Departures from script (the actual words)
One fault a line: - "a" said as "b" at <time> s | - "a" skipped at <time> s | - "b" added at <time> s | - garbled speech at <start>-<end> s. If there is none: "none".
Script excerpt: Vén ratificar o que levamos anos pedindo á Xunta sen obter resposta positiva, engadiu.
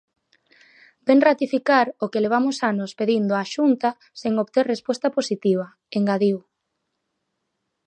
none